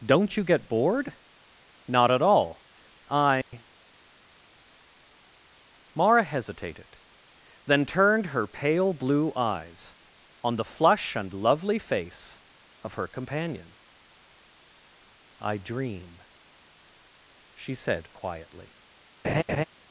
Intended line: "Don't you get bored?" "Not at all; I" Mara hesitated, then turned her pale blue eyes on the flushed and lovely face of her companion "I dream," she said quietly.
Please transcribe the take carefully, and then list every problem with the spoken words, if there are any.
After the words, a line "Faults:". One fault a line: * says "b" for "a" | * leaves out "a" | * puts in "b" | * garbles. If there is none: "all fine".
"Don't you get bored?" "Not at all; I" Mara hesitated, then turned her pale blue eyes on the flush and lovely face of her companion "I dream," she said quietly.
Faults:
* says "flush" for "flushed"